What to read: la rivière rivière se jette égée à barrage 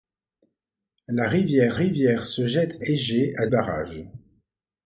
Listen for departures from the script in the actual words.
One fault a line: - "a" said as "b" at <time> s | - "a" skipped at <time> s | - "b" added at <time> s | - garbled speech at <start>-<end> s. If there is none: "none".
none